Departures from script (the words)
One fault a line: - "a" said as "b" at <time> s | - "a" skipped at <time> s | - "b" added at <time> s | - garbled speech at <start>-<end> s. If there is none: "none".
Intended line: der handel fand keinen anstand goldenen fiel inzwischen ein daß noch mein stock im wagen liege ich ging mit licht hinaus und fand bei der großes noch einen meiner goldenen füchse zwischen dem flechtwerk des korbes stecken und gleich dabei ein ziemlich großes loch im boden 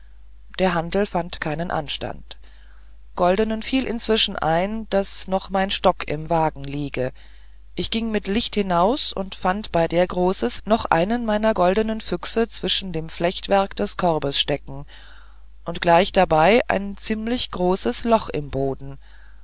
none